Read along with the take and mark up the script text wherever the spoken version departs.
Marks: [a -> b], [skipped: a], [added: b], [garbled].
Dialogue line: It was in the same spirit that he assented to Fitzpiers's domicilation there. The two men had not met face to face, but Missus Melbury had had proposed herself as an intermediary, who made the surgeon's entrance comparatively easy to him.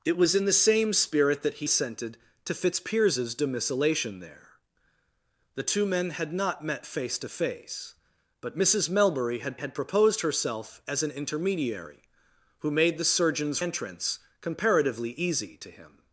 It was in the same spirit that he assented to Fitzpiers's domicilation there. The two men had not met face to face, but Missus Melbury had had proposed herself as an intermediary, who made the surgeon's entrance comparatively easy to him.